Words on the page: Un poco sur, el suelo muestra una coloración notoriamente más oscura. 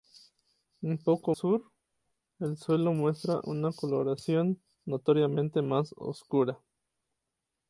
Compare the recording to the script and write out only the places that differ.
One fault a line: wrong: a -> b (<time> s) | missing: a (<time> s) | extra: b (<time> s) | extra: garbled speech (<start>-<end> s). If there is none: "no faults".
no faults